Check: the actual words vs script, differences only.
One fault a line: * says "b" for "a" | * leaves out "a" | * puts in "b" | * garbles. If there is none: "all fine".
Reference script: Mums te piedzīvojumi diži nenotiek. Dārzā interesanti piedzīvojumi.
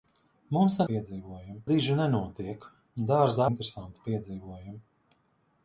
all fine